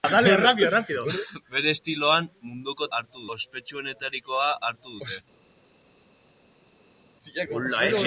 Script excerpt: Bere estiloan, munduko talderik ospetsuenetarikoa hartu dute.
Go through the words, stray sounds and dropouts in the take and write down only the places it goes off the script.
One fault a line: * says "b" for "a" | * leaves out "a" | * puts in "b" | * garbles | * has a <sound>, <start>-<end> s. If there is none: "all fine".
* says "hartu" for "talderik"